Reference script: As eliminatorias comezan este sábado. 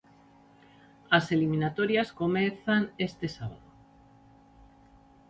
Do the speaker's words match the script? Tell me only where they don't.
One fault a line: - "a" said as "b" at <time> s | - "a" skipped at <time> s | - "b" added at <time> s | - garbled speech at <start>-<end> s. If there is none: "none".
none